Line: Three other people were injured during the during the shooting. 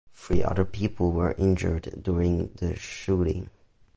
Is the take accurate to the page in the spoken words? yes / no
no